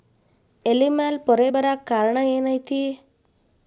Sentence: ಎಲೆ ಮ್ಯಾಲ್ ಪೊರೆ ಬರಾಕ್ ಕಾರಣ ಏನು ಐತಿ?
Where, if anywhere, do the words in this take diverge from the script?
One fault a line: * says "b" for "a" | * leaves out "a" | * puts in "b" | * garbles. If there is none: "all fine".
all fine